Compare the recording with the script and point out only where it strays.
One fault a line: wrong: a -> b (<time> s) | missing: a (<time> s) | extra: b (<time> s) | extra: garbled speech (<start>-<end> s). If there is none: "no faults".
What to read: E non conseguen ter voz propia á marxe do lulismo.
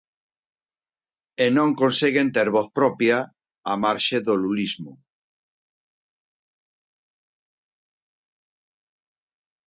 no faults